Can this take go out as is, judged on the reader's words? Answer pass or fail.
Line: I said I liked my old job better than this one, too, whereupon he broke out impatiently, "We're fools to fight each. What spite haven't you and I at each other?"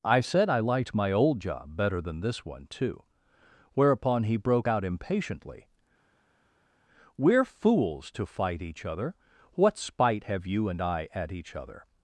fail